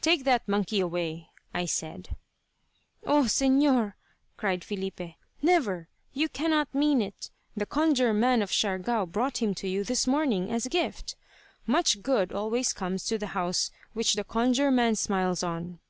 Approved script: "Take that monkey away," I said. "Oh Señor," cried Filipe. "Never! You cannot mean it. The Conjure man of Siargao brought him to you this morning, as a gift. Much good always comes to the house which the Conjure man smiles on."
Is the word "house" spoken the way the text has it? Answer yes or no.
yes